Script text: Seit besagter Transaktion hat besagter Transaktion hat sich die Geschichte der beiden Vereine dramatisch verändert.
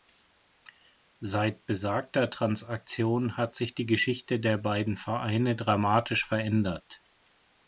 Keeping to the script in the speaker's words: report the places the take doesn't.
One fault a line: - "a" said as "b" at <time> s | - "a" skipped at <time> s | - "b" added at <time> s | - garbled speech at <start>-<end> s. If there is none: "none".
- "besagter Transaktion hat" skipped at 3.5 s